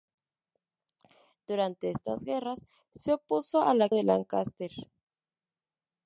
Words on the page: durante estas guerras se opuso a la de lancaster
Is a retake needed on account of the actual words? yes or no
no